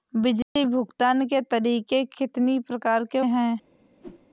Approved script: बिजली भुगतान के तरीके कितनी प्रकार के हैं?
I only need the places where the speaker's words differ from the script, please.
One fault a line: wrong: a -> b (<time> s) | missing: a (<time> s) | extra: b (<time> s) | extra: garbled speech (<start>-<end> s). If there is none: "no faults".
no faults